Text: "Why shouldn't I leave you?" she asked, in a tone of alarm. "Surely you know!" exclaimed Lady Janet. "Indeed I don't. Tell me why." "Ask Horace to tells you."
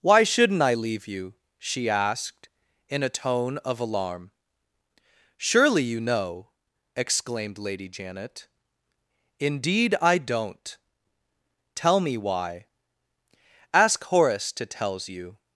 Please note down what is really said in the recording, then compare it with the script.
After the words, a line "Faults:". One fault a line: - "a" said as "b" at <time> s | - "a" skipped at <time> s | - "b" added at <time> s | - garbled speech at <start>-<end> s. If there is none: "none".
"Why shouldn't I leave you?" she asked, in a tone of alarm. "Surely you know!" exclaimed Lady Janet. "Indeed I don't. Tell me why." "Ask Horace to tells you."
Faults:
none